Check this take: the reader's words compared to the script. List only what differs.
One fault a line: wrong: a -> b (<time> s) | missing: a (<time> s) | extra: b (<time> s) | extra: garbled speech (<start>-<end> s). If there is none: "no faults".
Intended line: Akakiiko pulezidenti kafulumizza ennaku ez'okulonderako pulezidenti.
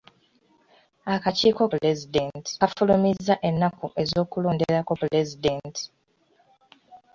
no faults